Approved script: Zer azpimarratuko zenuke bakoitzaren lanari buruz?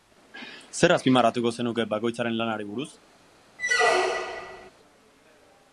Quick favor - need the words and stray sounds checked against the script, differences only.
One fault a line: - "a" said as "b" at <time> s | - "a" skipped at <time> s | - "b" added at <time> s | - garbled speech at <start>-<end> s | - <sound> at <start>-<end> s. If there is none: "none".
- squeak at 3.6-4.7 s